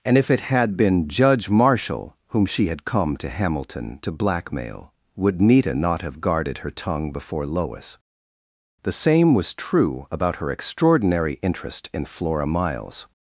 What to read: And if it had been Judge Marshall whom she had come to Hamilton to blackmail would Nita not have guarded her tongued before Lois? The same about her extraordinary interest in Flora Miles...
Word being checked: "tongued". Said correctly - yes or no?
no